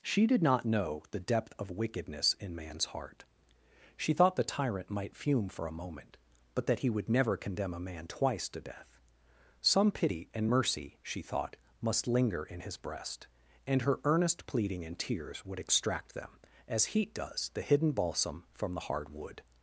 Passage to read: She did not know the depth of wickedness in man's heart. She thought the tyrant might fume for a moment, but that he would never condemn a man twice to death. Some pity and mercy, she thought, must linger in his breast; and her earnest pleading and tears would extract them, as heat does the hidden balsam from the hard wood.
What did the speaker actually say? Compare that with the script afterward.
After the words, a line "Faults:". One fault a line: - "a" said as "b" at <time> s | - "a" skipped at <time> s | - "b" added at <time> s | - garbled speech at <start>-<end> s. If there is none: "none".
She did not know the depth of wickedness in man's heart. She thought the tyrant might fume for a moment, but that he would never condemn a man twice to death. Some pity and mercy, she thought, must linger in his breast; and her earnest pleading and tears would extract them, as heat does the hidden balsam from the hard wood.
Faults:
none